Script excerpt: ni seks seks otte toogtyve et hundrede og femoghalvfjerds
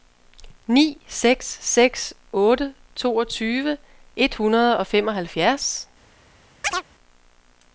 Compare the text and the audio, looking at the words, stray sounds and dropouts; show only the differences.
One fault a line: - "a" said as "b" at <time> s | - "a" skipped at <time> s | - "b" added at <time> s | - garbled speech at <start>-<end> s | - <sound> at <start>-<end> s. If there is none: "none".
- chirp at 6.6-6.8 s